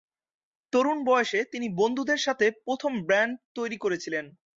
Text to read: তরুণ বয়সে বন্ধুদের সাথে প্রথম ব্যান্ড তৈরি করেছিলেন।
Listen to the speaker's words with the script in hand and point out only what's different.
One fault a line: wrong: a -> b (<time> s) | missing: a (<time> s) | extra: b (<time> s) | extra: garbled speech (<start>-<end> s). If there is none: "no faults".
extra: তিনি (1.5 s)